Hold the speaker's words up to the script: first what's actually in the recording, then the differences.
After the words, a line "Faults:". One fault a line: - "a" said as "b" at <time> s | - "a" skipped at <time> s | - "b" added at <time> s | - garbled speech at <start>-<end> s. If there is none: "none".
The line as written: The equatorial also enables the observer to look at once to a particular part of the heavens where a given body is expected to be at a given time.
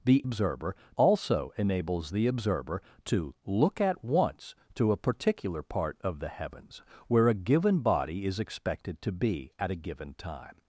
The observer also enables the observer to look at once to a particular part of the heavens where a given body is expected to be at a given time.
Faults:
- "equatorial" said as "observer" at 0.2 s